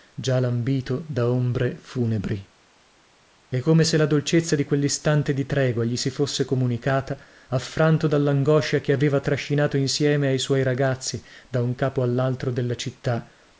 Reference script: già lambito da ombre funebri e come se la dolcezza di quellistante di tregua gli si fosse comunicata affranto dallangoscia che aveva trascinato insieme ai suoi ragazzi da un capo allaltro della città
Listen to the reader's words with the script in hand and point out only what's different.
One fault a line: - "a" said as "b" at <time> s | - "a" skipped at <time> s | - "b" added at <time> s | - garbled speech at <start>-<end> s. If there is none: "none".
none